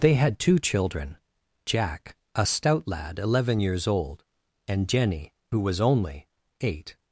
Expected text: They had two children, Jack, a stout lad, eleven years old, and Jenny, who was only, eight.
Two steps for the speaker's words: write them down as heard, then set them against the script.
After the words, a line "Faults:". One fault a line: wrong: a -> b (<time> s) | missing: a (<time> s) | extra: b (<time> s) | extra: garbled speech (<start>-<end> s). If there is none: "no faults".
They had two children, Jack, a stout lad, eleven years old, and Jenny, who was only, eight.
Faults:
no faults